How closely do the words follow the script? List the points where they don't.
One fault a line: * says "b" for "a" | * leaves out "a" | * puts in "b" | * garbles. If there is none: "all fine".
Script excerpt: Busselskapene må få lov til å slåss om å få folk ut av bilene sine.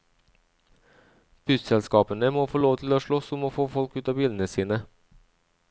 all fine